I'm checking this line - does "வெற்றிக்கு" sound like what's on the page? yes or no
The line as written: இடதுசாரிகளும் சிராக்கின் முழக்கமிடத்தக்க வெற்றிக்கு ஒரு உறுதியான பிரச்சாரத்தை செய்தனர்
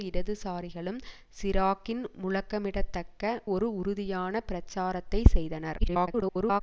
no